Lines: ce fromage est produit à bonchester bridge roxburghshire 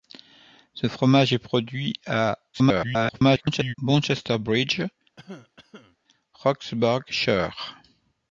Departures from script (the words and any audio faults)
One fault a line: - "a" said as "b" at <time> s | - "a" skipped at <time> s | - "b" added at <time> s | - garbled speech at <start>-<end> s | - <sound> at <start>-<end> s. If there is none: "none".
- garbled speech at 2.5-3.7 s
- cough at 5.2-6.0 s